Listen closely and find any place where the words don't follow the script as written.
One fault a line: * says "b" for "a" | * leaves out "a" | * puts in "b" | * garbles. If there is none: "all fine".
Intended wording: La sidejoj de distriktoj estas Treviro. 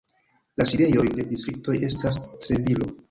all fine